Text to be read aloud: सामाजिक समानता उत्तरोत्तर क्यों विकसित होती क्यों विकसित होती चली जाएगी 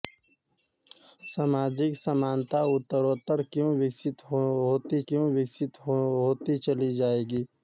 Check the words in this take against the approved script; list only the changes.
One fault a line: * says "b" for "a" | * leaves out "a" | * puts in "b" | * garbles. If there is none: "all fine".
all fine